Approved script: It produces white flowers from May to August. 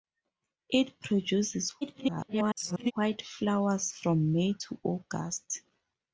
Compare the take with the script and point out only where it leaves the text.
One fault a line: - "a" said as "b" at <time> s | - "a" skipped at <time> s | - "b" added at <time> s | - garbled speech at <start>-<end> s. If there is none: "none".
- garbled speech at 1.8-2.9 s